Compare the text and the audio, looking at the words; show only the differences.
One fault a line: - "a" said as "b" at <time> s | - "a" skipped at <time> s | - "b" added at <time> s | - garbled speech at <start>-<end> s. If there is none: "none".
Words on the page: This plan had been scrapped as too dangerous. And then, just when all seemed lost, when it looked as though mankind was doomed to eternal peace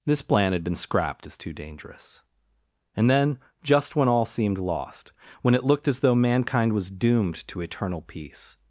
none